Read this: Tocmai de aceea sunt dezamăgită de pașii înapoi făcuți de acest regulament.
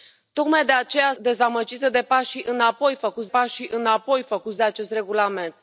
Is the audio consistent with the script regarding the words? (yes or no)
no